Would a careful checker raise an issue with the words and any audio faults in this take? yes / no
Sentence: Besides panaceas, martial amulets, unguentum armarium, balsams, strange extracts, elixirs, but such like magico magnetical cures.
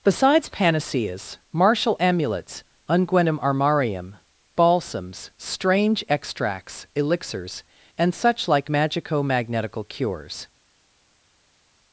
yes